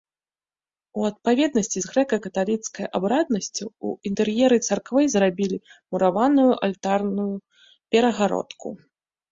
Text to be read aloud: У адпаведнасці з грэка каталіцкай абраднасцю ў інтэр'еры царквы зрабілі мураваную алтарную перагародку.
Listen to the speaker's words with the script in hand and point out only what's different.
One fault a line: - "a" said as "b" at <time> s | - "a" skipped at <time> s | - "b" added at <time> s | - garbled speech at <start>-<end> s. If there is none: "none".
none